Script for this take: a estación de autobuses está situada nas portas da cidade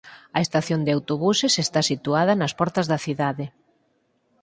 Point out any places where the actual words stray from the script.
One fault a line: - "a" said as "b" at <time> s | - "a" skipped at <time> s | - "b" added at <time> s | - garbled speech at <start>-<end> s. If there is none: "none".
none